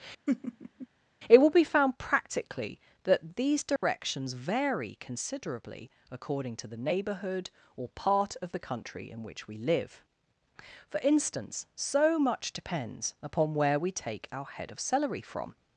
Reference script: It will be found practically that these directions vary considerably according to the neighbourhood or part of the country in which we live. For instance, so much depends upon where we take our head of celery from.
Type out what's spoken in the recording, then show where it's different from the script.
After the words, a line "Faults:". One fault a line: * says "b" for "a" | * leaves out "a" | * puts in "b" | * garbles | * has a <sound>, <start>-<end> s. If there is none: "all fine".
It will be found practically that these directions vary considerably according to the neighbourhood or part of the country in which we live. For instance, so much depends upon where we take our head of celery from.
Faults:
* has a laugh, 0.3-0.9 s
* has a dropout, 3.8-3.8 s